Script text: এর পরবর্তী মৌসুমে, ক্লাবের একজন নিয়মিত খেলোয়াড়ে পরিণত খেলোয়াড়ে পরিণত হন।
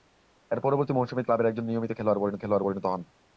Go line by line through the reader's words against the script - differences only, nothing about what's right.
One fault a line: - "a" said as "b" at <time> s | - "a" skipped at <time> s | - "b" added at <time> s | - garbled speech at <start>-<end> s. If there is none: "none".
none